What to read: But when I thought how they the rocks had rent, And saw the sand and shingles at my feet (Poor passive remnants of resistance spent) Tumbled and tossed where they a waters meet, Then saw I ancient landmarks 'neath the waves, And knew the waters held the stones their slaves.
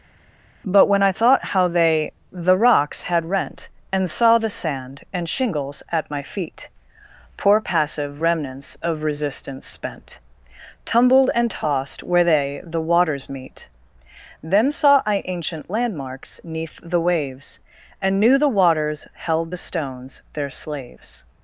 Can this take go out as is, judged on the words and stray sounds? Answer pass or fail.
fail